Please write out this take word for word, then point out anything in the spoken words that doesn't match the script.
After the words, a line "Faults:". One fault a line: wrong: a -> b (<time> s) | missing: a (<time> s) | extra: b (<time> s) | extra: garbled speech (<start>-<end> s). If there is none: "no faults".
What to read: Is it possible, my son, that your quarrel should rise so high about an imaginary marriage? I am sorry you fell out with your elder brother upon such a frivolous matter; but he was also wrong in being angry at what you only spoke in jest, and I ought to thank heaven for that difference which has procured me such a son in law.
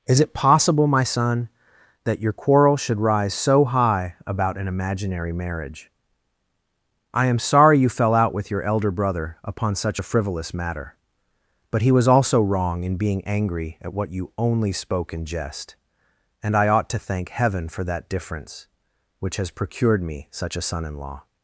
Is it possible, my son, that your quarrel should rise so high about an imaginary marriage? I am sorry you fell out with your elder brother upon such a frivolous matter; but he was also wrong in being angry at what you only spoke in jest, and I ought to thank heaven for that difference which has procured me such a son in law.
Faults:
no faults